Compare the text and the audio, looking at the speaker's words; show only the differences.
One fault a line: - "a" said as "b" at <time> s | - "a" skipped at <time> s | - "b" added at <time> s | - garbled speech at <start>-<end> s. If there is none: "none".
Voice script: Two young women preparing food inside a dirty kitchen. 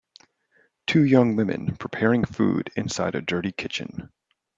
none